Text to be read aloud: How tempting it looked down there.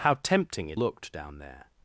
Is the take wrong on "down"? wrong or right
right